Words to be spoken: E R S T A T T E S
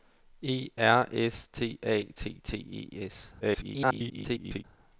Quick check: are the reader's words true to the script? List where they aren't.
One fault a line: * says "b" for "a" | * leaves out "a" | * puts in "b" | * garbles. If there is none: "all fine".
* garbles